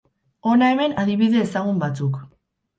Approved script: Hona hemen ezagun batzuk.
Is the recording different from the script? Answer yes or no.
yes